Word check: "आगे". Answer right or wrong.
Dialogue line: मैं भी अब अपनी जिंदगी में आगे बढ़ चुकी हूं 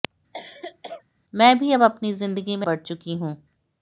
wrong